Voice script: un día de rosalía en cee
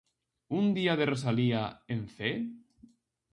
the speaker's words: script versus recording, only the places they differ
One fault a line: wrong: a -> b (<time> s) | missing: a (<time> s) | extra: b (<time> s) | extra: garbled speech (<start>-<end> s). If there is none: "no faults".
no faults